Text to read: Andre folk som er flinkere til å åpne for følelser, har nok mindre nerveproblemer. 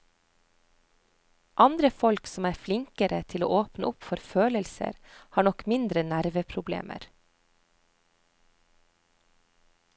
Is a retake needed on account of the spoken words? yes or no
yes